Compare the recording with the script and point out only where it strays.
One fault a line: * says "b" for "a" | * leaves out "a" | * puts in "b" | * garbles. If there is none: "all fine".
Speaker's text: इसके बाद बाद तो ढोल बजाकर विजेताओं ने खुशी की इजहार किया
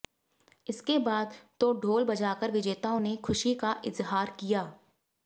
* leaves out "बाद"
* says "का" for "की"